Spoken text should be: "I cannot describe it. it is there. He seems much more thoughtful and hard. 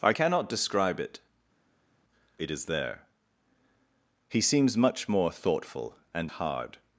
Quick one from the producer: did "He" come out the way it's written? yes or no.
yes